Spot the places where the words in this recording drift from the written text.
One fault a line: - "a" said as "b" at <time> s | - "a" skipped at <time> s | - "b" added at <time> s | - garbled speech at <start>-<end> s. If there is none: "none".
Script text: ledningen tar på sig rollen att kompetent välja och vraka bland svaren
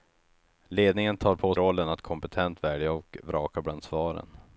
- "sig" skipped at 1.5 s